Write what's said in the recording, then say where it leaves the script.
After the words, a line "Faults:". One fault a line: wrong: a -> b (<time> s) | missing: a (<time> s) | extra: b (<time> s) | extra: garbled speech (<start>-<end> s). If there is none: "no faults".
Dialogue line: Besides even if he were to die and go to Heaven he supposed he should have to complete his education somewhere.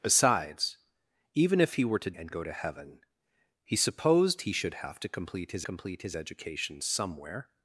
Besides even if he were to and go to Heaven he supposed he should have to complete his complete his education somewhere.
Faults:
missing: die (2.1 s)
extra: complete his (5.6 s)